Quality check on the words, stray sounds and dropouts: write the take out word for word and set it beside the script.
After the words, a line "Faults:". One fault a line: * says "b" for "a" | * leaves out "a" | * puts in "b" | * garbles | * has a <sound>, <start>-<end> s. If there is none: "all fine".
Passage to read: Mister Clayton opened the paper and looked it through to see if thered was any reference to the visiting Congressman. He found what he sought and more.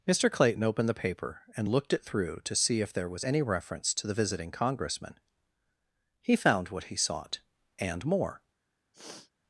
Mister Clayton opened the paper and looked it through to see if there was any reference to the visiting Congressman. He found what he sought and more.
Faults:
* says "there" for "thered"
* has a sniff, 8.9-9.3 s